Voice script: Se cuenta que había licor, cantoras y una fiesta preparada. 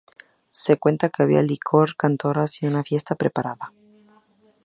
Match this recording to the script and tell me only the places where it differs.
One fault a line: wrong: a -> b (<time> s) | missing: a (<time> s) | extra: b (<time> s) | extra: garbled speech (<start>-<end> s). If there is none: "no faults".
no faults